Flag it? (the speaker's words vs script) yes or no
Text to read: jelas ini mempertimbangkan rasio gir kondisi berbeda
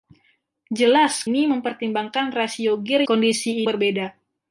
no